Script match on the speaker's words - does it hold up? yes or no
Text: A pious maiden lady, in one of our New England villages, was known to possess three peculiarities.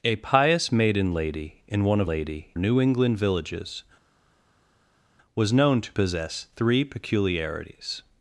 no